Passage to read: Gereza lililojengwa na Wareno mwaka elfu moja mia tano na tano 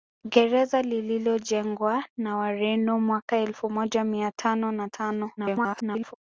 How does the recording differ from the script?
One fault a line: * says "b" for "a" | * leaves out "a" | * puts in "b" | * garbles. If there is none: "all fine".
* garbles